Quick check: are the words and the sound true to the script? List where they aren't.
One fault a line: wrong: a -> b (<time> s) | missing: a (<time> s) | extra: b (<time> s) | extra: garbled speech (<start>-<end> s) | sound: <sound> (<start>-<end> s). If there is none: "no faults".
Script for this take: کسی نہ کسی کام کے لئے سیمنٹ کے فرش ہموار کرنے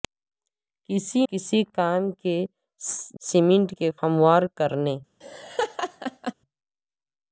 missing: نہ (1.2 s)
missing: لئے (2.4 s)
missing: فرش (3.9 s)
sound: laugh (5.2-6.3 s)